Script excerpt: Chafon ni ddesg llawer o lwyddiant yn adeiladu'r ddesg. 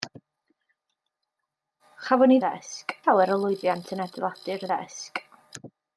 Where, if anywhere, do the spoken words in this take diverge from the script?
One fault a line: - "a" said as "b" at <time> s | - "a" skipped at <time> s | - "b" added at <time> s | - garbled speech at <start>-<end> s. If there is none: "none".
none